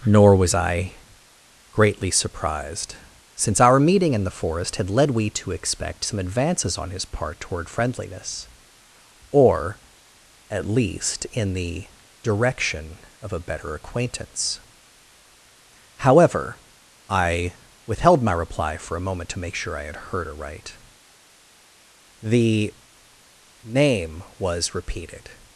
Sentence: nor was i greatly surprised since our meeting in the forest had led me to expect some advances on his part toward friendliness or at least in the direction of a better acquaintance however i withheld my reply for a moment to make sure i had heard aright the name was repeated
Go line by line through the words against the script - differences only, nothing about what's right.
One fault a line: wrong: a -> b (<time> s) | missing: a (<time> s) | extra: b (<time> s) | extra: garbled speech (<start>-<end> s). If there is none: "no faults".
wrong: me -> we (5.1 s)